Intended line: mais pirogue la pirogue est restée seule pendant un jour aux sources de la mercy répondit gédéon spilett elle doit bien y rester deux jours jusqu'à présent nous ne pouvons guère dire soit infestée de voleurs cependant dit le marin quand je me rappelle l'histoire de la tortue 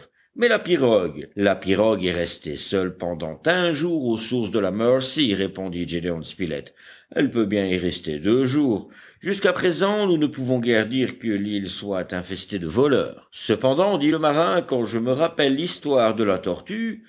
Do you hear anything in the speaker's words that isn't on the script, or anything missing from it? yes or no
yes